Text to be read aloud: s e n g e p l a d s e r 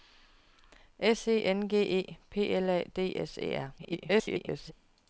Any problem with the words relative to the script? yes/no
yes